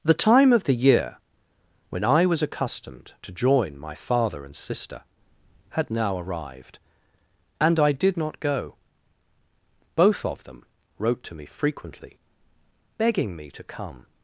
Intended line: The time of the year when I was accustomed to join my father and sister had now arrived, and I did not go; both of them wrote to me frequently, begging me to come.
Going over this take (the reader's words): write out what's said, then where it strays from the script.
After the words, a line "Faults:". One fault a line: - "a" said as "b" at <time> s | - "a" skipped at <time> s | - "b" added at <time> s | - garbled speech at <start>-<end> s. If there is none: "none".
The time of the year when I was accustomed to join my father and sister had now arrived, and I did not go; both of them wrote to me frequently, begging me to come.
Faults:
none